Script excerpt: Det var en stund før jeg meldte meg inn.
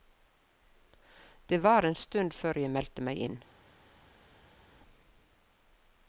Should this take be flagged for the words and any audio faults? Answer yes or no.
no